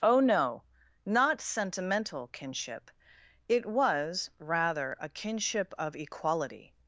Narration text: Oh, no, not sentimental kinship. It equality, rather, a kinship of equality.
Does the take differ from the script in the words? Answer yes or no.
yes